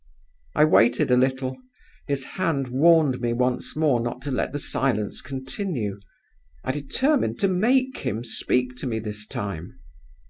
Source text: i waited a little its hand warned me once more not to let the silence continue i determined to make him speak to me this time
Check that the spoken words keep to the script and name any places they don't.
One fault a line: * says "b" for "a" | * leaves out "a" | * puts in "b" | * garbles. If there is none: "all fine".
* says "his" for "its"